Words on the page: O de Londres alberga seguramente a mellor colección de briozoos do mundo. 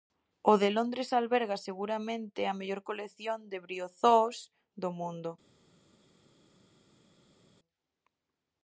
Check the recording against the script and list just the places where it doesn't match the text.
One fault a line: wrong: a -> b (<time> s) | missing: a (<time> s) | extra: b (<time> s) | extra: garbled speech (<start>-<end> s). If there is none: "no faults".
no faults